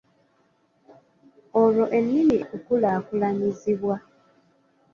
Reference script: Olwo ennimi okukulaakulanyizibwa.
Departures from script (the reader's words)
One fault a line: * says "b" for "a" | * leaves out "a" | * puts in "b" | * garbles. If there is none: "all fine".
all fine